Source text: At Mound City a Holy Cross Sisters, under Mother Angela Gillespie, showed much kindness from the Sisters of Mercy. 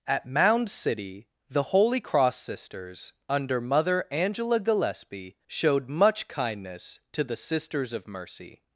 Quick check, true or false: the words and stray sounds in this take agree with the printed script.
false